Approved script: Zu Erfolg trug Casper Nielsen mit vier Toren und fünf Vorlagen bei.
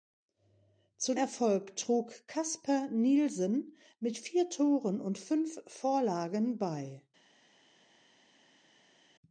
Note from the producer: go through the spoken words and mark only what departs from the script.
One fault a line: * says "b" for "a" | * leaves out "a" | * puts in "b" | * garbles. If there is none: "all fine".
all fine